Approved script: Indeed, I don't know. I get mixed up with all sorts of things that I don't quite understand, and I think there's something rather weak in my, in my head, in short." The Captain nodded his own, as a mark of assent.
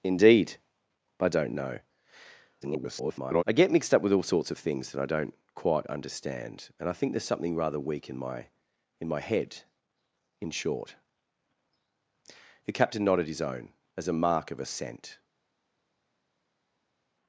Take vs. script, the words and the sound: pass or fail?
fail